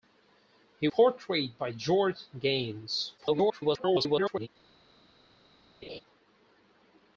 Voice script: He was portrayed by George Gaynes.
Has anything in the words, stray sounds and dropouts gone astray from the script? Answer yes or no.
yes